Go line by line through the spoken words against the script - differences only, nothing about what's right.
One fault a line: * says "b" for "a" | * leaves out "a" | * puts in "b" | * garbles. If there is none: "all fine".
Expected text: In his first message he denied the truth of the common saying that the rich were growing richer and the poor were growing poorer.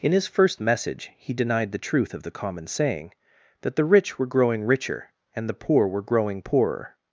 all fine